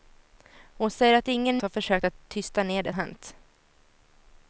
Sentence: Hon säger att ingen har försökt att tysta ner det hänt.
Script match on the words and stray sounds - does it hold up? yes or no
yes